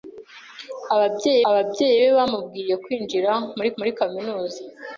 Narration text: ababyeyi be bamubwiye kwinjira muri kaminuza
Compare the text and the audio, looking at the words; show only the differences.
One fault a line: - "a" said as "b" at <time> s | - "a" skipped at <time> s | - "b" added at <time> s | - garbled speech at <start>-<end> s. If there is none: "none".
- "ababyeyi" added at 1.5 s
- "muri" added at 3.8 s